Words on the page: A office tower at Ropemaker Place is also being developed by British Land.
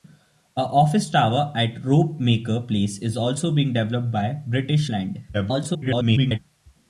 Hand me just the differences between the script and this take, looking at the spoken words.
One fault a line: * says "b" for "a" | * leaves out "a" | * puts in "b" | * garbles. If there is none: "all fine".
* garbles